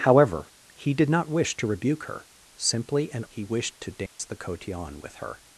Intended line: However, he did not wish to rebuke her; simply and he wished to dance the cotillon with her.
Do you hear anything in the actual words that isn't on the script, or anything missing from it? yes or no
no